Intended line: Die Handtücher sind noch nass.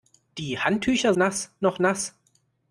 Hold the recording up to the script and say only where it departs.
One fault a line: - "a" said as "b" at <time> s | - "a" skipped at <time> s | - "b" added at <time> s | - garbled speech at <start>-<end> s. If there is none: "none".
- "sind" said as "nass" at 1.2 s